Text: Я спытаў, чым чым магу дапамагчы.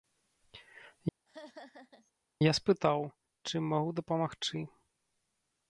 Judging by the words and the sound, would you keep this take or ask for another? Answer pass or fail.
fail